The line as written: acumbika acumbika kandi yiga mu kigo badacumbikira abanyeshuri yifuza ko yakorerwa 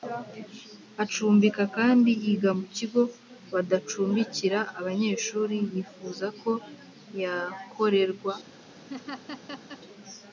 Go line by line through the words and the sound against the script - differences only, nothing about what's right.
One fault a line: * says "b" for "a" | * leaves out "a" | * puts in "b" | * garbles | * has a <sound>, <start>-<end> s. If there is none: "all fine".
* leaves out "acumbika"
* has a laugh, 8.9-9.8 s